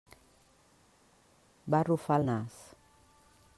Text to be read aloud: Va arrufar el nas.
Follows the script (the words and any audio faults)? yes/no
yes